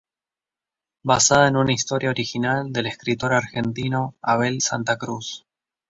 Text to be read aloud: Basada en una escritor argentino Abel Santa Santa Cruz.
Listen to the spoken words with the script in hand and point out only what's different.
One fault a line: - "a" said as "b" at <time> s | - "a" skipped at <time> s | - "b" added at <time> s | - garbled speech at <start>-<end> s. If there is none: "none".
- "historia original del" added at 1.7 s
- "Santa" skipped at 5.0 s